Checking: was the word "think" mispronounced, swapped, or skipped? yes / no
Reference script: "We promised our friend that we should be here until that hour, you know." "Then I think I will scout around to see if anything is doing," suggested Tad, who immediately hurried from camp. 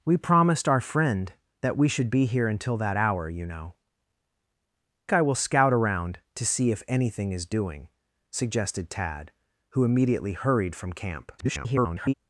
yes